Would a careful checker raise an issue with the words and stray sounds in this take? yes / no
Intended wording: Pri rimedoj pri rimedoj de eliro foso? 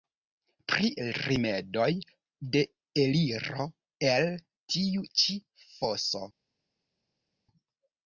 yes